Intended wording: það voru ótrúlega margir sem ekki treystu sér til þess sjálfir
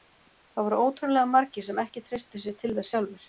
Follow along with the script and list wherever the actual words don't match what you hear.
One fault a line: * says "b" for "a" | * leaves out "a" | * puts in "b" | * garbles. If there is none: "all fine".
all fine